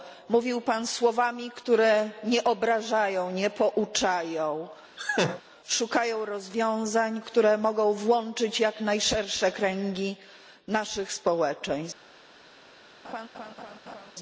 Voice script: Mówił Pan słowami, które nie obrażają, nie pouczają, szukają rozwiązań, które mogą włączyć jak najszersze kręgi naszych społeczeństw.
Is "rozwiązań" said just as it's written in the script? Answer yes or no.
yes